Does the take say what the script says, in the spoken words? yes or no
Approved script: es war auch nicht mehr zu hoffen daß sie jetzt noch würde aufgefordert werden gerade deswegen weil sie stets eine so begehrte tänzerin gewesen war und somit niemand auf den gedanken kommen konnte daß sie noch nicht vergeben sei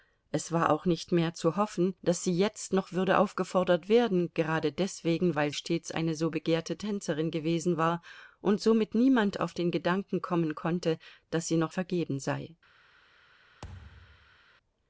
no